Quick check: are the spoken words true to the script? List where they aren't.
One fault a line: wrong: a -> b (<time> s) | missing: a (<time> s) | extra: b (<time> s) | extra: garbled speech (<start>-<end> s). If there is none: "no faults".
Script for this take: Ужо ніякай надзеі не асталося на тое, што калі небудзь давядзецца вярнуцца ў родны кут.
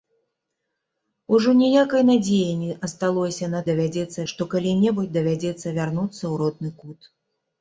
wrong: тое -> давядзецца (3.7 s)